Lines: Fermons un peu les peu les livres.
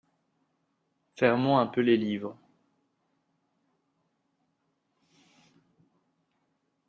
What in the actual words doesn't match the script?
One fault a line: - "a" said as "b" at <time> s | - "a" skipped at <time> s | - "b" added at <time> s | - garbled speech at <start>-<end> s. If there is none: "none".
- "peu les" skipped at 2.0 s